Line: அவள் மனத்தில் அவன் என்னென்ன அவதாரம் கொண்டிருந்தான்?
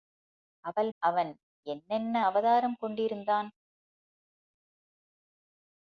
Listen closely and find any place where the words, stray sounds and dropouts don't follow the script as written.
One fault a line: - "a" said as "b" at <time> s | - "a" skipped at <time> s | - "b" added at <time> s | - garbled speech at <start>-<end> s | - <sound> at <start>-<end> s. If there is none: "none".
- "மனத்தில்" skipped at 0.9 s